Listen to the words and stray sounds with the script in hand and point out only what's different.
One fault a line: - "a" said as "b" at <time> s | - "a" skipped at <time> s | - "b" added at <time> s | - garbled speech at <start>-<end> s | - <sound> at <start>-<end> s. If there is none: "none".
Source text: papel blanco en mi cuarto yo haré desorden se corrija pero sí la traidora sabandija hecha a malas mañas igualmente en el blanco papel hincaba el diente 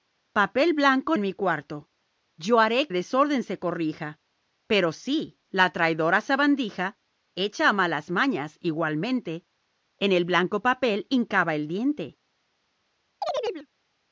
- chirp at 13.2-13.7 s